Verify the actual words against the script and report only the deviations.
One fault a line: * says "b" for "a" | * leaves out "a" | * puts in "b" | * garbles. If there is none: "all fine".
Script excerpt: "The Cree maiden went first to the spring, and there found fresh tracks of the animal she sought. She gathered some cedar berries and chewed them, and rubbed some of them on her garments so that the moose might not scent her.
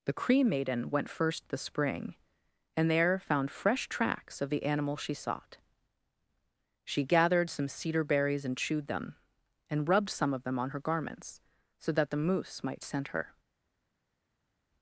* leaves out "to"
* leaves out "not"